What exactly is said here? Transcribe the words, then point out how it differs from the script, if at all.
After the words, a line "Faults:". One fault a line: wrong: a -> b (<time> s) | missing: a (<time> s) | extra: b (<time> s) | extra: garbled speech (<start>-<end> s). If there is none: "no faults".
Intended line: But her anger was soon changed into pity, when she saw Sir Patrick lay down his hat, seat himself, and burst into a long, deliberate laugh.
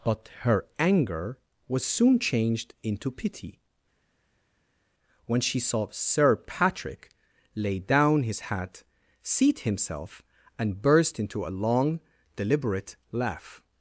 But her anger was soon changed into pity, when she saw Sir Patrick lay down his hat, seat himself, and burst into a long, deliberate laugh.
Faults:
no faults